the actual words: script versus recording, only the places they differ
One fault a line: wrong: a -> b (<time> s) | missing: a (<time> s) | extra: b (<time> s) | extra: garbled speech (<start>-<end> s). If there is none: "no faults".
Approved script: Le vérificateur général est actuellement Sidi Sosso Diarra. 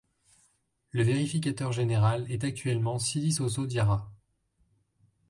no faults